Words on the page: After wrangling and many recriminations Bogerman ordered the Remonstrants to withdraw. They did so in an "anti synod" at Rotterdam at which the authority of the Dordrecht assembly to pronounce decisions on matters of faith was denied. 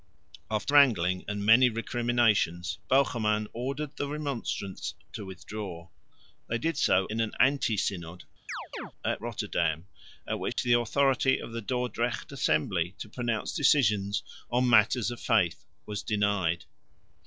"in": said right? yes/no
yes